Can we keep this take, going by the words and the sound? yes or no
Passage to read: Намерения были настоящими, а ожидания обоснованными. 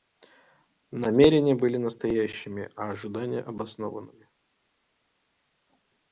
yes